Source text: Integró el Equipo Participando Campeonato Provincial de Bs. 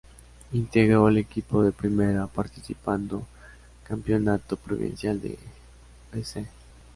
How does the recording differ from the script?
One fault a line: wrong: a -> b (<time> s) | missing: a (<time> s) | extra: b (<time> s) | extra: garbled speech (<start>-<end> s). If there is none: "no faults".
extra: de Primera (1.6 s)